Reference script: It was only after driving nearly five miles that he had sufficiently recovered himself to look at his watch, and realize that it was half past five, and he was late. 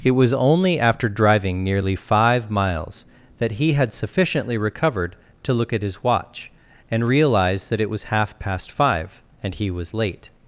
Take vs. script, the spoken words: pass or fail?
fail